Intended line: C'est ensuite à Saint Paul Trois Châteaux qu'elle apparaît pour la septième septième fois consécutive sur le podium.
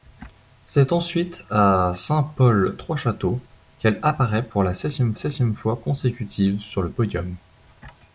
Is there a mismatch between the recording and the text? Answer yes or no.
no